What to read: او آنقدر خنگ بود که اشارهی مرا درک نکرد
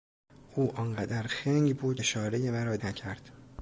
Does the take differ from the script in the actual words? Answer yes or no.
yes